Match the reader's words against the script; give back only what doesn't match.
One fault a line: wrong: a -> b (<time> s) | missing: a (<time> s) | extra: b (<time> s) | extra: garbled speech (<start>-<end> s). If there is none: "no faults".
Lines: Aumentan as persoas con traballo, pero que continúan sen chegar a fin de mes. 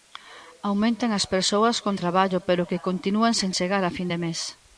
no faults